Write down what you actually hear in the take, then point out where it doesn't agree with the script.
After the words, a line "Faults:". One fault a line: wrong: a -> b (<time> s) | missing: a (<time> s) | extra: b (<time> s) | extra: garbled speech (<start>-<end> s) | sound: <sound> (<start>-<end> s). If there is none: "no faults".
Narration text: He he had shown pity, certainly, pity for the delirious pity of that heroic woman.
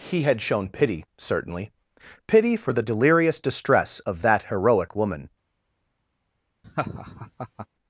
He had shown pity, certainly, pity for the delirious distress of that heroic woman.
Faults:
missing: he (0.2 s)
wrong: pity -> distress (3.4 s)
sound: laugh (6.6-7.7 s)